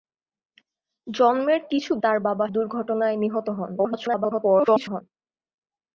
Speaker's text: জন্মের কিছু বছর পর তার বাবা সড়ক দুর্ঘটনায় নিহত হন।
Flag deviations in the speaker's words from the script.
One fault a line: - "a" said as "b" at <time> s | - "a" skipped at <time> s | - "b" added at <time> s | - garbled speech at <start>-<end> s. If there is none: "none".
- "বছর পর" skipped at 1.9 s
- "সড়ক" skipped at 2.5 s
- garbled speech at 3.8-5.0 s